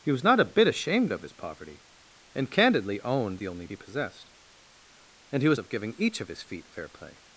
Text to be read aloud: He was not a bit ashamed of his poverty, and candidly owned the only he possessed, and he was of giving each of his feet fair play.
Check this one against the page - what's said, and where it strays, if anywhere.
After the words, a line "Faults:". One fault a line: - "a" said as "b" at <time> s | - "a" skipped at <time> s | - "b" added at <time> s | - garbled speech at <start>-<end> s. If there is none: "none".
He was not a bit ashamed of his poverty, and candidly owned the only he possessed, and he was of giving each of his feet fair play.
Faults:
none